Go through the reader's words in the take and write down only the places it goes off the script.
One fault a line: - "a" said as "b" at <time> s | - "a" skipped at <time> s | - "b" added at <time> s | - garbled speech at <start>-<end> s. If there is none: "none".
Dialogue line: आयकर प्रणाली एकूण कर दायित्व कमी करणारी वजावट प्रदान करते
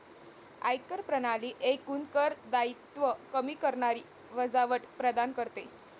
none